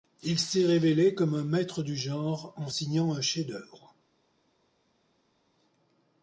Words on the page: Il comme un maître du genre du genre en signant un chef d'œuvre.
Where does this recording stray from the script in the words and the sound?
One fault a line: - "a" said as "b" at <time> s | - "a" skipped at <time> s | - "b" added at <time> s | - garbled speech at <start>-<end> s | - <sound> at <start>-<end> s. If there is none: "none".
- "s'est révélé" added at 0.4 s
- "du genre" skipped at 2.5 s